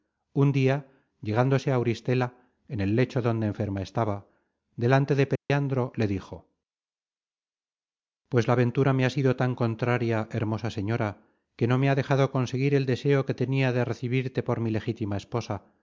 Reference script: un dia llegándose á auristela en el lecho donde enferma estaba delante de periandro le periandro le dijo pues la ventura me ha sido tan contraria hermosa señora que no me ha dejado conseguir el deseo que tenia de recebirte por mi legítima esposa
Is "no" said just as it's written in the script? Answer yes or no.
yes